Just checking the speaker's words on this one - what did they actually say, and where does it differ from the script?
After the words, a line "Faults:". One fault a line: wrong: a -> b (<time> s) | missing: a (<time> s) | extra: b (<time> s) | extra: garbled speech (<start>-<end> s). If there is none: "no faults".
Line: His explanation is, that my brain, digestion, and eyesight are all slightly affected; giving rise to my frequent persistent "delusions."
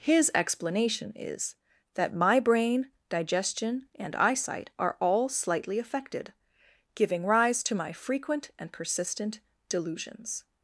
His explanation is, that my brain, digestion, and eyesight are all slightly affected; giving rise to my frequent and persistent "delusions."
Faults:
extra: and (8.6 s)